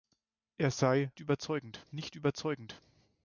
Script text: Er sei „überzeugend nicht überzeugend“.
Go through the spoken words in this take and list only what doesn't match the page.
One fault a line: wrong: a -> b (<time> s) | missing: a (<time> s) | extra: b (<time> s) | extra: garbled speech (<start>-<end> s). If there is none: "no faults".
no faults